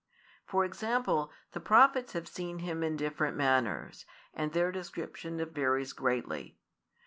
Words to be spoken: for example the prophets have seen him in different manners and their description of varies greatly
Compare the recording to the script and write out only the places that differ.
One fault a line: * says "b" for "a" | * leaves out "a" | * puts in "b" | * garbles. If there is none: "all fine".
all fine